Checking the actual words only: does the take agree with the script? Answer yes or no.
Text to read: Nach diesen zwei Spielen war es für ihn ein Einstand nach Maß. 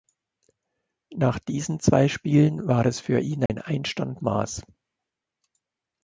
no